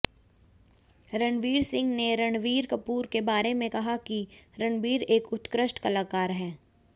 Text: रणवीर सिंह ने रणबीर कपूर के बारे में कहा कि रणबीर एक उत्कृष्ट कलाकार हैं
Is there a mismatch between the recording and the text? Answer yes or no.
no